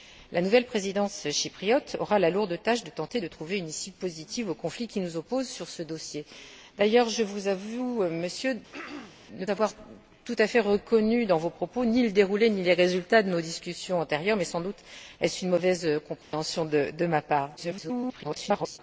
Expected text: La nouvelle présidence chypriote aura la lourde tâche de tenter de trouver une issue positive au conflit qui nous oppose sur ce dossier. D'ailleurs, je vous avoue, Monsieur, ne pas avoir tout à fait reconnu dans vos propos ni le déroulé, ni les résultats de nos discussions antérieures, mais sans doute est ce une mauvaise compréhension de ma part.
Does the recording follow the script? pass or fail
fail